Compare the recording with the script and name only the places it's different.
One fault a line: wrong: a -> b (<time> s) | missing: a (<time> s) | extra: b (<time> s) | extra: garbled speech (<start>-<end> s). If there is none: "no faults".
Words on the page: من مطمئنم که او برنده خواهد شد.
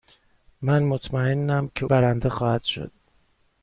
missing: او (1.9 s)